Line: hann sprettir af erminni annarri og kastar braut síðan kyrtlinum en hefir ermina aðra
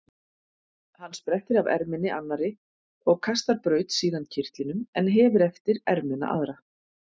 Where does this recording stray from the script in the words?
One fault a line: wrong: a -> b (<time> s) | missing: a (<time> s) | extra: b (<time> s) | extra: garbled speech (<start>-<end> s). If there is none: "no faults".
extra: eftir (5.5 s)